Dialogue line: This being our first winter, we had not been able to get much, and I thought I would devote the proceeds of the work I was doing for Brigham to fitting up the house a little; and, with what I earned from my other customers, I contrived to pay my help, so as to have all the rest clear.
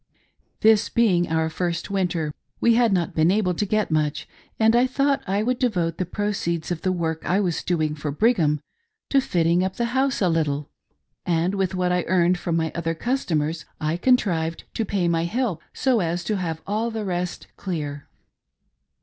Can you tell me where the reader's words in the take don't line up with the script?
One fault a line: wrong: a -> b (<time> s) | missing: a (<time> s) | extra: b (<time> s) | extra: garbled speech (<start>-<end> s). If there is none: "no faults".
no faults